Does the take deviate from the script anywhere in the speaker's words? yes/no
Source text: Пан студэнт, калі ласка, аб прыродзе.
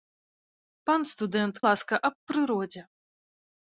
yes